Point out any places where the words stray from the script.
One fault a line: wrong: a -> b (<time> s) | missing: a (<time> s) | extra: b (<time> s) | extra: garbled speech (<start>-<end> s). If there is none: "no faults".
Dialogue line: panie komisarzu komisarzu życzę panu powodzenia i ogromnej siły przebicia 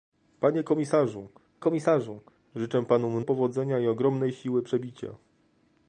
no faults